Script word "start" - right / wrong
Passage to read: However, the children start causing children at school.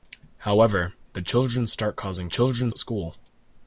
right